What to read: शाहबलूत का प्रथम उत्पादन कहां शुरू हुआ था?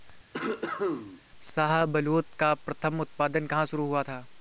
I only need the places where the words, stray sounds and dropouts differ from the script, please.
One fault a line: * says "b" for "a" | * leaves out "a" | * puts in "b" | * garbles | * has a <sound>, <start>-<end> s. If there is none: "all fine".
* has a cough, 0.3-1.2 s